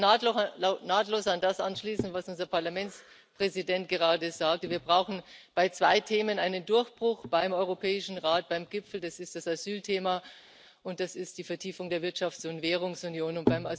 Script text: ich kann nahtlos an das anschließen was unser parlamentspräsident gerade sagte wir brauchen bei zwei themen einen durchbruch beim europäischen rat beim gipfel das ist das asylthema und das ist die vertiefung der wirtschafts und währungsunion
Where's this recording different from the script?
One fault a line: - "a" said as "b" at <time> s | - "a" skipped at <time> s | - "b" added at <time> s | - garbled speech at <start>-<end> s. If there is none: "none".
none